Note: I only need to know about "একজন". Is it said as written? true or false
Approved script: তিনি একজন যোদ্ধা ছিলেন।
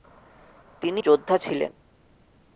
false